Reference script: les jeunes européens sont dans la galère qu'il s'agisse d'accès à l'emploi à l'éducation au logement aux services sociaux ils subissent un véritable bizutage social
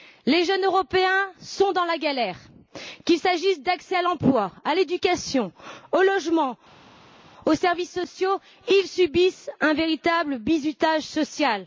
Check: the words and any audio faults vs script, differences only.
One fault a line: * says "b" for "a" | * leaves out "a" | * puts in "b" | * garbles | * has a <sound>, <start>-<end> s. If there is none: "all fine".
all fine